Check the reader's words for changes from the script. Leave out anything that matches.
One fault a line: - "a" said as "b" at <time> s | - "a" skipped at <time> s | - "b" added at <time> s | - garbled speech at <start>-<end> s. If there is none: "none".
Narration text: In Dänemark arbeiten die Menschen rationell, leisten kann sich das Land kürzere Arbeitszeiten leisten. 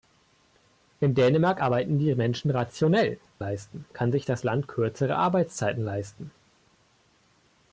none